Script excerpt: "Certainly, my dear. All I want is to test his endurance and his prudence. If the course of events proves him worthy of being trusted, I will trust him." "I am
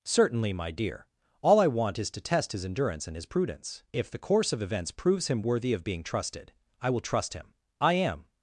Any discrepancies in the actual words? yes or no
no